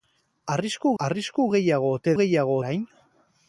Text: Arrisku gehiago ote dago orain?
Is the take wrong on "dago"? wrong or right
wrong